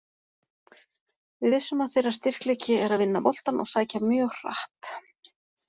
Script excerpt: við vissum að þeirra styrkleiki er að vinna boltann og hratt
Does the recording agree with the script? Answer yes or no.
no